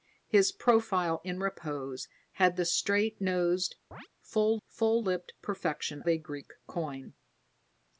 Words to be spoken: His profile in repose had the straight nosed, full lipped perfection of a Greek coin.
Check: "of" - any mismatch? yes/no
yes